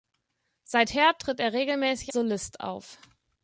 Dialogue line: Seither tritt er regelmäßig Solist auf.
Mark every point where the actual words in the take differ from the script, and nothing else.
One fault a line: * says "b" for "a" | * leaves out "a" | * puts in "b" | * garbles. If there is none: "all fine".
all fine